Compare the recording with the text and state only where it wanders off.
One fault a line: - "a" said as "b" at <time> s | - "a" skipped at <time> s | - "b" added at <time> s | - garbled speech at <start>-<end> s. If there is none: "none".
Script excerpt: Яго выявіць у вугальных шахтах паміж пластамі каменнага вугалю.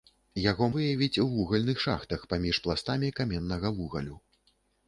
none